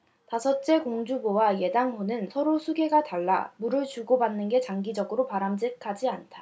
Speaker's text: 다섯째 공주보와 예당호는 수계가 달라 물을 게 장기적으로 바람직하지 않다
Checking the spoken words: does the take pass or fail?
fail